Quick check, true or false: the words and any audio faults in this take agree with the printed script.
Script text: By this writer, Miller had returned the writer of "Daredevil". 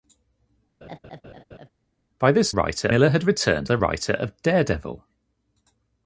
false